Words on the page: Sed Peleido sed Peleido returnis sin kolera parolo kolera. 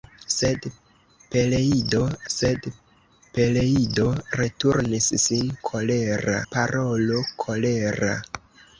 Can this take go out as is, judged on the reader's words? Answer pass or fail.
pass